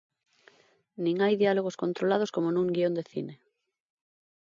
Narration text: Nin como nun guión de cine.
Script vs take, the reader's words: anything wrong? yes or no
yes